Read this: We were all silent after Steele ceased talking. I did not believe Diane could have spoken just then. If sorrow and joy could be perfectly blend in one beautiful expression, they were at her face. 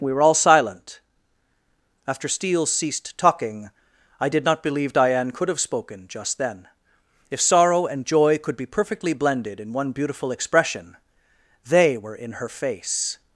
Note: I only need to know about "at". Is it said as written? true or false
false